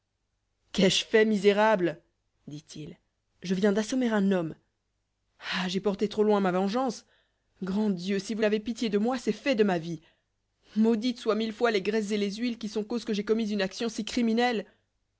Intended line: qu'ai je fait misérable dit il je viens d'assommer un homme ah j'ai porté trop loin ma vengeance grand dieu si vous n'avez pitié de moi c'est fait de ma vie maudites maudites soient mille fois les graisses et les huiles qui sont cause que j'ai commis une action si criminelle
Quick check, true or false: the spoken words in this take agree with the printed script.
false